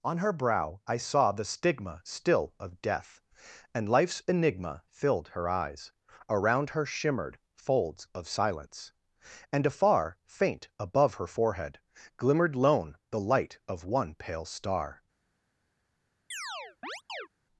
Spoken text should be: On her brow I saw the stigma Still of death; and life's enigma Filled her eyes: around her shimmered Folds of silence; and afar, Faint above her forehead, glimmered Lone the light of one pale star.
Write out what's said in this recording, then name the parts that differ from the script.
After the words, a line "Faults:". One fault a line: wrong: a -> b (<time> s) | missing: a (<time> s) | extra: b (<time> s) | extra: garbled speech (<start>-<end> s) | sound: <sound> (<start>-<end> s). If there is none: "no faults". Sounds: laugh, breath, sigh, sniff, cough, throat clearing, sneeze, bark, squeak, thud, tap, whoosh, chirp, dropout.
On her brow I saw the stigma Still of death; and life's enigma Filled her eyes: around her shimmered Folds of silence; and afar, Faint above her forehead, glimmered Lone the light of one pale star.
Faults:
sound: chirp (16.3-17.3 s)